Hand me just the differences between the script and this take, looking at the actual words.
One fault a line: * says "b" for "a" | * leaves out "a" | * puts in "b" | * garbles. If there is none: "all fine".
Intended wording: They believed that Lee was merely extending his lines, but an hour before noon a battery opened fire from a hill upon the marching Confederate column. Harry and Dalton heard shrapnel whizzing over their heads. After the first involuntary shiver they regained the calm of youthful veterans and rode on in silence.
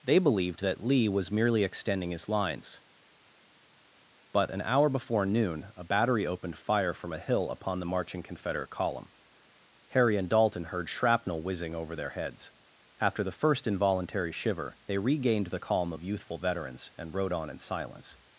all fine